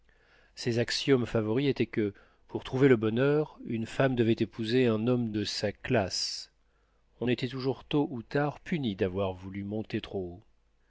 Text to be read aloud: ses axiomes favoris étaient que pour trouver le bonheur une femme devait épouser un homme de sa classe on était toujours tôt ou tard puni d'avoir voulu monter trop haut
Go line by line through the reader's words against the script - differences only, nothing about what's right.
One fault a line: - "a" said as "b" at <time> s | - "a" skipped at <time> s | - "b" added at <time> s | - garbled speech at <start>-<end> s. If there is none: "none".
none